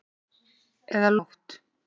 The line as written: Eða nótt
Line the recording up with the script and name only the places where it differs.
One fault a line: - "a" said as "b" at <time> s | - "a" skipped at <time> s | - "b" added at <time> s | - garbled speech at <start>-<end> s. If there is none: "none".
none